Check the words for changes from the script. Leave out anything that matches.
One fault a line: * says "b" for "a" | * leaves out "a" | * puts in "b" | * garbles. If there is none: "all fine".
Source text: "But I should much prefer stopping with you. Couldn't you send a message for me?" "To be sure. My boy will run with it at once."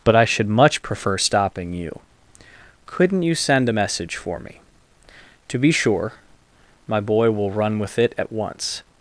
* leaves out "with"